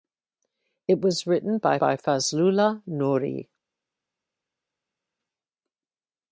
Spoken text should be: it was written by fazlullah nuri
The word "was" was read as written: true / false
true